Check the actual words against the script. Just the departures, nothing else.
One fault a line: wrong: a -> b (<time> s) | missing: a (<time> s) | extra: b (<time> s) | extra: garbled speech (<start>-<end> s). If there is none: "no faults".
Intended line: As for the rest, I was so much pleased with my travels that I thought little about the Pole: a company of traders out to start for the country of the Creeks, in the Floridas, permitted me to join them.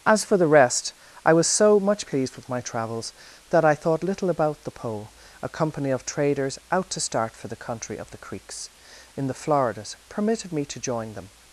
no faults